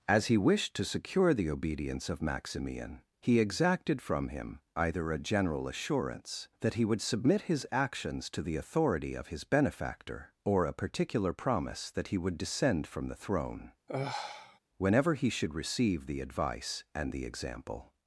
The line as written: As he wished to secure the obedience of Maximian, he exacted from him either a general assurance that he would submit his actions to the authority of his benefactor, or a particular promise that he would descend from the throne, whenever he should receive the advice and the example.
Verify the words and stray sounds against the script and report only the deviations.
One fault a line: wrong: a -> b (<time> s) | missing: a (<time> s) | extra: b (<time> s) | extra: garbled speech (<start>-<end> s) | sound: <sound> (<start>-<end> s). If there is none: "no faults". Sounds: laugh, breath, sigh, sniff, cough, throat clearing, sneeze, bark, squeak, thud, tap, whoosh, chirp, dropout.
sound: sigh (13.9-14.6 s)